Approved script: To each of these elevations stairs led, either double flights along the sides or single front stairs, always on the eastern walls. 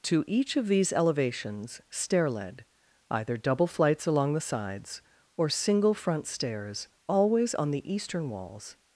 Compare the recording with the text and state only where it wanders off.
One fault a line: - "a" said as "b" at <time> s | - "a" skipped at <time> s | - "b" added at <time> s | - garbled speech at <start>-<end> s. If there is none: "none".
- "stairs" said as "stair" at 1.9 s